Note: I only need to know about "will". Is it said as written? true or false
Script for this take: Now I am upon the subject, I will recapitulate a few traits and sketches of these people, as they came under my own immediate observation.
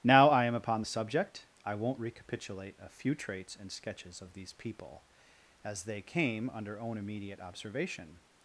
false